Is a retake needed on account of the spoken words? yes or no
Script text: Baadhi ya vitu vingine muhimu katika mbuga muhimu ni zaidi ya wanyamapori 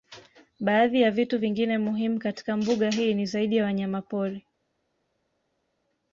yes